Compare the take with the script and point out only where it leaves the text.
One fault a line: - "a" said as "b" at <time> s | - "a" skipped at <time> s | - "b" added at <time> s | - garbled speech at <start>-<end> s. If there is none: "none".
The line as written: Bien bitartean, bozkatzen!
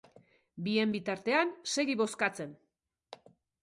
- "segi" added at 1.8 s